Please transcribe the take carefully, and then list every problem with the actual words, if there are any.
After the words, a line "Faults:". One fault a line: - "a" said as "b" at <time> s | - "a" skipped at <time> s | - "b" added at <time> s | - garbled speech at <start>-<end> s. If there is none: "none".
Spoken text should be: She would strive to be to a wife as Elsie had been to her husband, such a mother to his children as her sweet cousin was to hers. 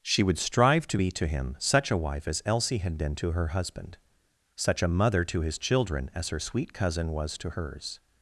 She would strive to be to him such a wife as Elsie had been to her husband, such a mother to his children as her sweet cousin was to hers.
Faults:
- "him such" added at 1.3 s